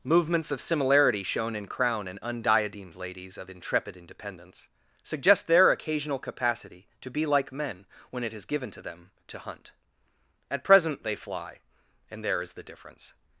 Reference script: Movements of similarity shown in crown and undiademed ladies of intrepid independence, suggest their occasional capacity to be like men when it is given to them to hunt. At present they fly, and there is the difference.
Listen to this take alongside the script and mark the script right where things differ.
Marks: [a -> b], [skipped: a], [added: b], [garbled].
Movements of similarity shown in crown and undiademed ladies of intrepid independence, suggest their occasional capacity to be like men when it is given to them to hunt. At present they fly, and there is the difference.